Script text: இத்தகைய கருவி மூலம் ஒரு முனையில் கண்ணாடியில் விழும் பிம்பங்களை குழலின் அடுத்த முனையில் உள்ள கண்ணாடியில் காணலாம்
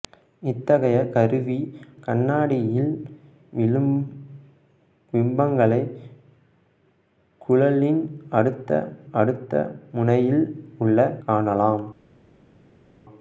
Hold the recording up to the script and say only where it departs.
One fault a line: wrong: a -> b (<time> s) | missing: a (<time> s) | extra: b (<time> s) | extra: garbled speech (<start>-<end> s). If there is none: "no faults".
missing: மூலம் ஒரு முனையில் (1.6 s)
extra: அடுத்த (9.1 s)
missing: கண்ணாடியில் (11.0 s)